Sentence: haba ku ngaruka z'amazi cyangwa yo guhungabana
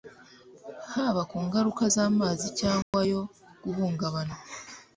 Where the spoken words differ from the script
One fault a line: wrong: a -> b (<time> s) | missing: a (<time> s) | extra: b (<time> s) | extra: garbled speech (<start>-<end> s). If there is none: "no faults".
no faults